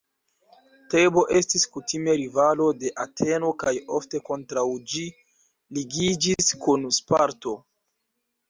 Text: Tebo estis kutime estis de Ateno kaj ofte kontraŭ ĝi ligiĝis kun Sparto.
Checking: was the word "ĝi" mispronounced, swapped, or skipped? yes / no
no